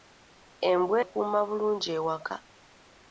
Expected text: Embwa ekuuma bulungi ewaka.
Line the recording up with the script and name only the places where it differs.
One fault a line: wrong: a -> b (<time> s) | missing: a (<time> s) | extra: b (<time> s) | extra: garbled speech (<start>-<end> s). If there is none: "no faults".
no faults